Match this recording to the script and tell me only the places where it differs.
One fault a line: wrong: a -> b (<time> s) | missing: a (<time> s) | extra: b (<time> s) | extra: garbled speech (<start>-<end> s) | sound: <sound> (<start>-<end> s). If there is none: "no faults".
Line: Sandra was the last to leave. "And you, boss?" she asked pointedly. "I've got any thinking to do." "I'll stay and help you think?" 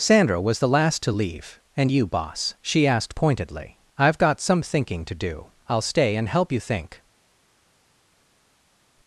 wrong: any -> some (4.4 s)